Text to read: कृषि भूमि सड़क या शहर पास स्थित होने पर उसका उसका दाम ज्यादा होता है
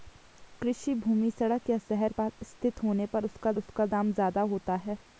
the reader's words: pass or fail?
pass